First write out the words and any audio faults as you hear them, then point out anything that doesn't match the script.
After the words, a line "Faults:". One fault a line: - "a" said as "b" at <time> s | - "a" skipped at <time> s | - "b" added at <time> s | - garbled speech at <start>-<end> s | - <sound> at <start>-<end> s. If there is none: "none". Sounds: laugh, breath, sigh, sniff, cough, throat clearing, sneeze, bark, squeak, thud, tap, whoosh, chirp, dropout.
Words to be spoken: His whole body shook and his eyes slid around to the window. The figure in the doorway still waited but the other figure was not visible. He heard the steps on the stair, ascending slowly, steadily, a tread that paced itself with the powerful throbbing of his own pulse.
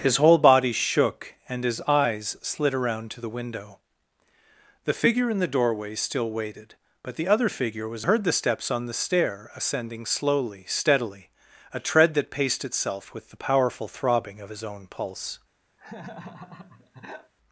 His whole body shook and his eyes slid around to the window. The figure in the doorway still waited but the other figure was heard the steps on the stair, ascending slowly, steadily, a tread that paced itself with the powerful throbbing of his own pulse.
Faults:
- "not visible He" skipped at 8.1 s
- laugh at 15.8-17.3 s